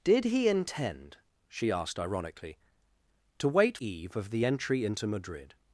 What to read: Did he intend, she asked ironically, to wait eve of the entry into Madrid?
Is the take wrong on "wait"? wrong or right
right